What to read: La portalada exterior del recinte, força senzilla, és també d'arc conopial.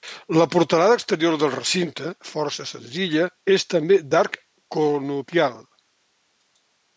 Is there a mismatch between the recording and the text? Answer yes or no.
no